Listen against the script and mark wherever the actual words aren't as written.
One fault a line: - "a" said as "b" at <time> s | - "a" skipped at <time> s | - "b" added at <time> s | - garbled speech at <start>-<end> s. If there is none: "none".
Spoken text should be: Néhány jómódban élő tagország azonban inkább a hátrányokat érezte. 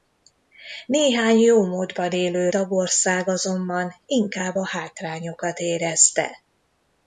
none